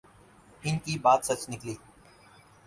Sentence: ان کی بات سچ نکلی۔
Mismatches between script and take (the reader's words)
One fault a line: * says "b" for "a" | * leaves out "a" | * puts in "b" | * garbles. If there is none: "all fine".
all fine